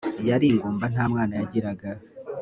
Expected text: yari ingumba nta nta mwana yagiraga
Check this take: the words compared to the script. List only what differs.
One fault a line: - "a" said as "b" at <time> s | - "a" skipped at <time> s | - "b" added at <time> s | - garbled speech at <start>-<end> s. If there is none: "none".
- "nta" skipped at 1.0 s